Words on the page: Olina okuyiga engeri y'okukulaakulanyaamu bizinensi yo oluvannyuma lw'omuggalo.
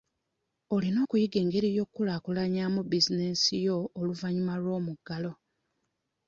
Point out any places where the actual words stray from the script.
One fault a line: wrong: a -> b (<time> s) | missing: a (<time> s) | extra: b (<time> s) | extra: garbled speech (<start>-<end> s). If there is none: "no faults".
no faults